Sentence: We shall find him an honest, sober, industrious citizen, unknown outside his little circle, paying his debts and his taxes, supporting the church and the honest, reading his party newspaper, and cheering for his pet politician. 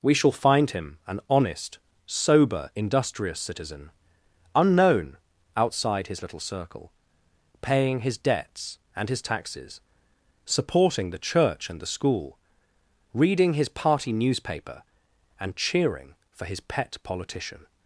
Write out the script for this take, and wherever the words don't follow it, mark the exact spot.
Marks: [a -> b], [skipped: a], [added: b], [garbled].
We shall find him an honest, sober, industrious citizen, unknown outside his little circle, paying his debts and his taxes, supporting the church and the [honest, -> school] reading his party newspaper, and cheering for his pet politician.